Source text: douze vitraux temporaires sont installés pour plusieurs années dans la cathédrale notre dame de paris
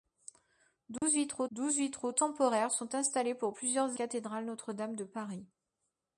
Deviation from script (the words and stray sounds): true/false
true